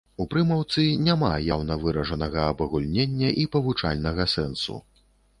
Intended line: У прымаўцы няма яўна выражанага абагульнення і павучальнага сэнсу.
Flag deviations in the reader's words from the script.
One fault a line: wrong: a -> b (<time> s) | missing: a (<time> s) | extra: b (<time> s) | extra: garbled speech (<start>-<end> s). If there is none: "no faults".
no faults